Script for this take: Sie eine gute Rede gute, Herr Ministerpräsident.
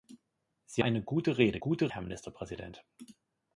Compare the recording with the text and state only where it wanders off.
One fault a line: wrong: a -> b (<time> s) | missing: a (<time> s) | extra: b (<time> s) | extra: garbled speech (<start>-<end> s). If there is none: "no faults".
no faults